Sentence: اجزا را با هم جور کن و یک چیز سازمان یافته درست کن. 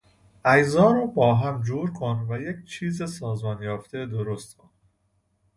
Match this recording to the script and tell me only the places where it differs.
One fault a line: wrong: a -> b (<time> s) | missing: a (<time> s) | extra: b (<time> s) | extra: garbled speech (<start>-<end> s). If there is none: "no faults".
no faults